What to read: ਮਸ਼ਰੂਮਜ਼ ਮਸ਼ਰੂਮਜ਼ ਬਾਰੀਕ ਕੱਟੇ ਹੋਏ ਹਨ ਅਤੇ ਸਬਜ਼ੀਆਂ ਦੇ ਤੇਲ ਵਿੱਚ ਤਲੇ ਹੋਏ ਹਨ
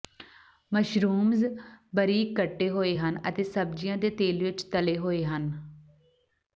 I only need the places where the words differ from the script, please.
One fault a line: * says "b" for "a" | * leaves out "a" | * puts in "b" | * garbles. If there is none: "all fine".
* leaves out "ਮਸ਼ਰੂਮਜ਼"